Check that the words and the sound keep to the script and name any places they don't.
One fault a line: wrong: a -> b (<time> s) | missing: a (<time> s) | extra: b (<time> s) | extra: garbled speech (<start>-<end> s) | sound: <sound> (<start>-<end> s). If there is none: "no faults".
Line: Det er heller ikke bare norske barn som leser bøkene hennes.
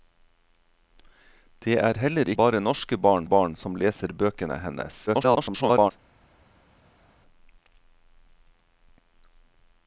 missing: ikke (2.3 s)
extra: barn (3.3 s)
extra: garbled speech (5.1-5.9 s)